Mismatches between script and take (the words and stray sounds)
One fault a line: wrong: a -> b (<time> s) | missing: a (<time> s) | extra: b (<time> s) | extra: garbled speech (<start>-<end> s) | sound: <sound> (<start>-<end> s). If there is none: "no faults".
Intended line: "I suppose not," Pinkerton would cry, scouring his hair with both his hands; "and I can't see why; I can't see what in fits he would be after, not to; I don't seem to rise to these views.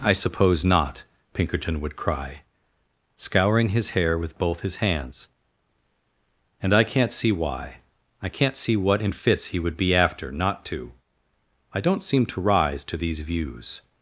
no faults